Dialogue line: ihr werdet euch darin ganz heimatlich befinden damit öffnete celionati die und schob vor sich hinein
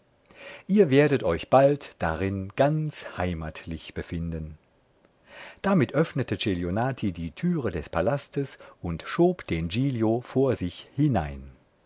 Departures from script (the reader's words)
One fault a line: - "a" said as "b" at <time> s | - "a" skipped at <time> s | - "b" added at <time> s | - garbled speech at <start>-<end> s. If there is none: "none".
- "bald" added at 1.5 s
- "türe des palastes" added at 7.3 s
- "den giglio" added at 9.5 s